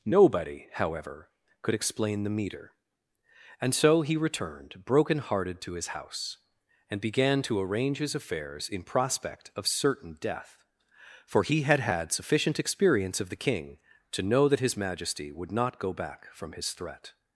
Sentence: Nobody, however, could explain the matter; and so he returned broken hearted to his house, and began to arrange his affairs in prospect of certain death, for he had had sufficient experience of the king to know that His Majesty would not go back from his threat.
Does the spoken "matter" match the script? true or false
false